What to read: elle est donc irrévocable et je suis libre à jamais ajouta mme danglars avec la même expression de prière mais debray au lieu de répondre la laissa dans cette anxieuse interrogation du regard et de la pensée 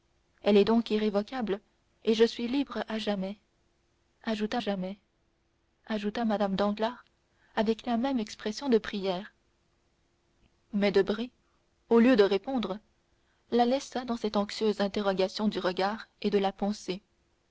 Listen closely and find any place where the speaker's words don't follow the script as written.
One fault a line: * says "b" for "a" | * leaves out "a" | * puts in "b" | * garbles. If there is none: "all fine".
* puts in "jamais ajouta"